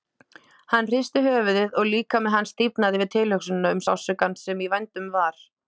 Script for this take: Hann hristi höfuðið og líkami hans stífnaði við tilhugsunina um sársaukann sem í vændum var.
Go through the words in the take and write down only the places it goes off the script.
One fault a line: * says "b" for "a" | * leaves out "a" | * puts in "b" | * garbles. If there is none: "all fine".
all fine